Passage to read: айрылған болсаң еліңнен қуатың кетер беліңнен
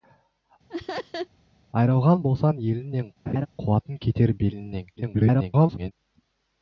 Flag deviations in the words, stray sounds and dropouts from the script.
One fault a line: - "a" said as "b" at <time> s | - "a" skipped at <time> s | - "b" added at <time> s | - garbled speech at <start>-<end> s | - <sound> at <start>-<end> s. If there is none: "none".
- laugh at 0.7-1.3 s
- laugh at 3.3-3.5 s
- garbled speech at 5.0-5.9 s